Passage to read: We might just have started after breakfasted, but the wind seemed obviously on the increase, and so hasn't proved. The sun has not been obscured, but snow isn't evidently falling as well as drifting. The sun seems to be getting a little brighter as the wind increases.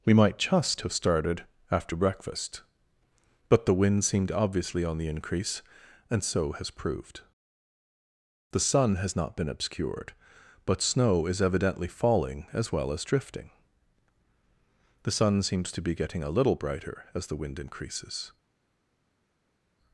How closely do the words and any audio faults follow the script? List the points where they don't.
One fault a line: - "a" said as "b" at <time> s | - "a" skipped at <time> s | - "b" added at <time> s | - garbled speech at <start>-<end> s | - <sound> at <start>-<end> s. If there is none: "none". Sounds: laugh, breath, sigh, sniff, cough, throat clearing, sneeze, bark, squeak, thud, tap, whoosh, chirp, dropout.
- "breakfasted" said as "breakfast" at 1.9 s
- "hasn't" said as "has" at 6.5 s
- "isn't" said as "is" at 11.3 s